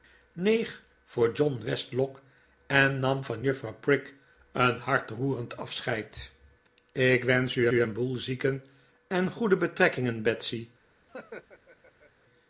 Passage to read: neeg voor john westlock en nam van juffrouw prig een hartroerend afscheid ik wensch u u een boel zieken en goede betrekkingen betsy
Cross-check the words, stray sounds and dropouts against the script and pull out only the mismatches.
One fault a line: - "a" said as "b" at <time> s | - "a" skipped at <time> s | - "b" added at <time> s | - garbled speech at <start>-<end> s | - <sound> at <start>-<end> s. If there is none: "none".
- laugh at 11.1-12.1 s